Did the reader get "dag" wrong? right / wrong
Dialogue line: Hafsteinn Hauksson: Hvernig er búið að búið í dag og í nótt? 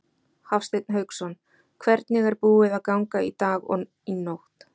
right